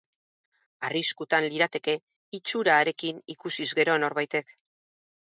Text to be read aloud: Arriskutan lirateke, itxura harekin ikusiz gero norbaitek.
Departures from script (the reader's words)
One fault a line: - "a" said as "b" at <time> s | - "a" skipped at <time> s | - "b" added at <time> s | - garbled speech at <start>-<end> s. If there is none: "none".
none